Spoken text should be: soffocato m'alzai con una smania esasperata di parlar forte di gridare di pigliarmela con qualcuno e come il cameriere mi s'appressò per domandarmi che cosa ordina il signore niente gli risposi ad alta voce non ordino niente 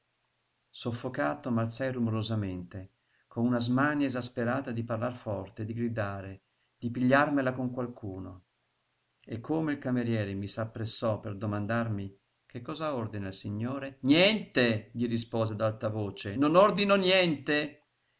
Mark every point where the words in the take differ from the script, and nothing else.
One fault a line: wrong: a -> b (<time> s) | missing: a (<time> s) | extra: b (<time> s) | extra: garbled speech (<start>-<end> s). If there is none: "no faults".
extra: rumorosamente (1.9 s)